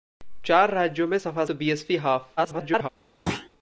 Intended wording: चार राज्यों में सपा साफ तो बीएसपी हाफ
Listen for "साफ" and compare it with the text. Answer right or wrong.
wrong